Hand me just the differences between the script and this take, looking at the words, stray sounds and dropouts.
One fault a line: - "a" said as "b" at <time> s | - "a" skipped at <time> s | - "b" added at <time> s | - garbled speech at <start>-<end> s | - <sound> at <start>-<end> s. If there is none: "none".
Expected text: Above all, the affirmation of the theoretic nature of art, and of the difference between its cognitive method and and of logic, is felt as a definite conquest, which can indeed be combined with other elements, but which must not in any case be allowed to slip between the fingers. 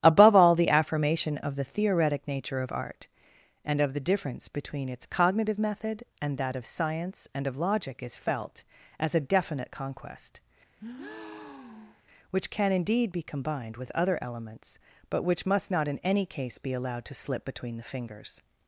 - "that of science" added at 6.4 s
- breath at 10.8-12.0 s